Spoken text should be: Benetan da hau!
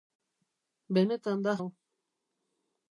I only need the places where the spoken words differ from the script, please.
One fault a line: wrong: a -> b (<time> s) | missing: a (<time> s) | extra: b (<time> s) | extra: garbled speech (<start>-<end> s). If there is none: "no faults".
no faults